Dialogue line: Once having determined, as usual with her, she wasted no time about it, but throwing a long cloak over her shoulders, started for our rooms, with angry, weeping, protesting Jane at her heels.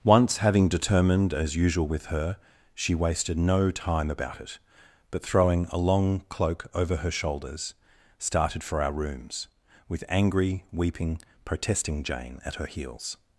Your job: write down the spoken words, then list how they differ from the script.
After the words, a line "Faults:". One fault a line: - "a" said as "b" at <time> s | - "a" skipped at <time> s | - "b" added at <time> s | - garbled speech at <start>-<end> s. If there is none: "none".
Once having determined, as usual with her, she wasted no time about it, but throwing a long cloak over her shoulders, started for our rooms, with angry, weeping, protesting Jane at her heels.
Faults:
none